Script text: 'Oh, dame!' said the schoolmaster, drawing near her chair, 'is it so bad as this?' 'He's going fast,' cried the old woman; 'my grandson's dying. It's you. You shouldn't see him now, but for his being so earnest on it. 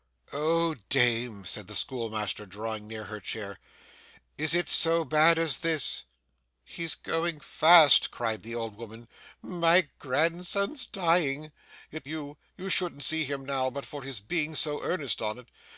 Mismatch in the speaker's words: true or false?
false